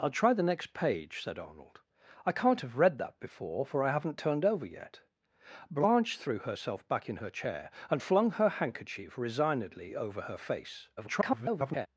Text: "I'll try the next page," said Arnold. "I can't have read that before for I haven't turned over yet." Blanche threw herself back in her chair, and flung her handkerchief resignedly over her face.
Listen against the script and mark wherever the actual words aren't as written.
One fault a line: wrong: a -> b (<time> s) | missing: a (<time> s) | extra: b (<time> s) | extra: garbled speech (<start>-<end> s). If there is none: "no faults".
extra: garbled speech (11.0-11.9 s)